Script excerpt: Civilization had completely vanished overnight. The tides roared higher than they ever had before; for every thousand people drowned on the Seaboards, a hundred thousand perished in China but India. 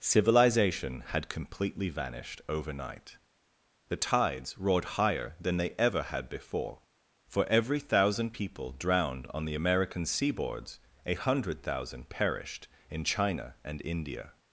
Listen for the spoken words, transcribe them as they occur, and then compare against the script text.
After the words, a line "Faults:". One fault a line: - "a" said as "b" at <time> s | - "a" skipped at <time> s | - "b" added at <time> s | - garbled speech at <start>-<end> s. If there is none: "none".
Civilization had completely vanished overnight. The tides roared higher than they ever had before; for every thousand people drowned on the American seaboards, a hundred thousand perished in China and India.
Faults:
- "American" added at 9.6 s
- "but" said as "and" at 13.6 s